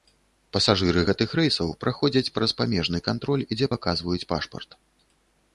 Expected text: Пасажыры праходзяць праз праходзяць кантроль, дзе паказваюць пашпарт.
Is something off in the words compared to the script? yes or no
yes